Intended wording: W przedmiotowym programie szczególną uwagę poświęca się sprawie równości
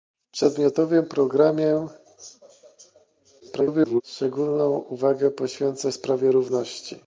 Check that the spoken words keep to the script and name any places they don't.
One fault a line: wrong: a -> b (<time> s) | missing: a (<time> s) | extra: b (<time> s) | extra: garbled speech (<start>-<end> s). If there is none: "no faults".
extra: garbled speech (3.4-4.0 s)
missing: się (5.9 s)